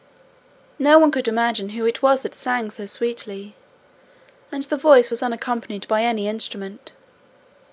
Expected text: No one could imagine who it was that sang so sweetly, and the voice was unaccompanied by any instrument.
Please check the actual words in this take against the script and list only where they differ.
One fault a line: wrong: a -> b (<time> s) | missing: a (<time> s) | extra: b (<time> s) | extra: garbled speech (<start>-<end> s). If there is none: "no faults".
no faults